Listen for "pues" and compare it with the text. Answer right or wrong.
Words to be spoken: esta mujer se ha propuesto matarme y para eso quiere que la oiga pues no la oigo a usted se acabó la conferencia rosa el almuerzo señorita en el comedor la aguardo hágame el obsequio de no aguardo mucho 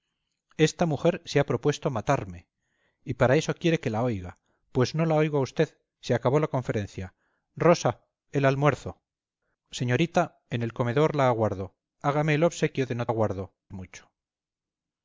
right